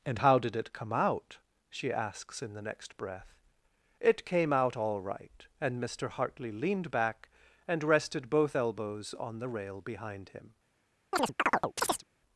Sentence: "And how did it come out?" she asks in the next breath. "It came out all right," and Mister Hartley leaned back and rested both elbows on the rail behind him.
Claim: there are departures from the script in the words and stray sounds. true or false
true